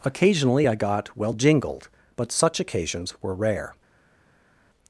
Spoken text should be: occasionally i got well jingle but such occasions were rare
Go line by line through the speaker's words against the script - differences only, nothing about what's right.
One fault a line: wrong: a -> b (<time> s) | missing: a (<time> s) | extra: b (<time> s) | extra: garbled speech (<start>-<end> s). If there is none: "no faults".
wrong: jingle -> jingled (1.3 s)